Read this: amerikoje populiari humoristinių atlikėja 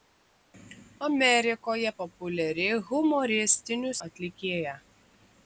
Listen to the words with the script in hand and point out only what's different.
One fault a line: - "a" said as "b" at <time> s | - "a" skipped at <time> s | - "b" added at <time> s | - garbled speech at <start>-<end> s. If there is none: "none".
none